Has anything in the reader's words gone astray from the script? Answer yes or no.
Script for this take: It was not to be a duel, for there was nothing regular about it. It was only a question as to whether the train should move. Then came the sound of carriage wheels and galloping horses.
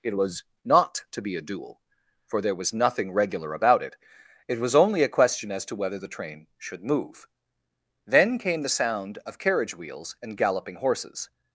no